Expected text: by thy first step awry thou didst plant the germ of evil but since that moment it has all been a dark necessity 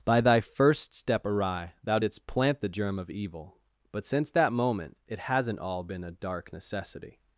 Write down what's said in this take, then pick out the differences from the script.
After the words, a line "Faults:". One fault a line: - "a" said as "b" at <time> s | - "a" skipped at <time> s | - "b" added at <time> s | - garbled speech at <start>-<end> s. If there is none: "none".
by thy first step awry thou didst plant the germ of evil but since that moment it hasn't all been a dark necessity
Faults:
- "has" said as "hasn't" at 5.2 s